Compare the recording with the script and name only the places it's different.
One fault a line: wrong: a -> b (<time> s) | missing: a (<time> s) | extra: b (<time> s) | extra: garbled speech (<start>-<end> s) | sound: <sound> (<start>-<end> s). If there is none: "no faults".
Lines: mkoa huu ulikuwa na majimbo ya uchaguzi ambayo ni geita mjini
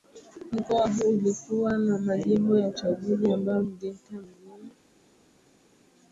no faults